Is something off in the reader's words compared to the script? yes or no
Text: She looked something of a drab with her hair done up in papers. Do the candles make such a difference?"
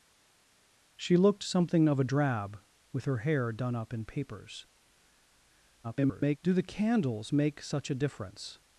yes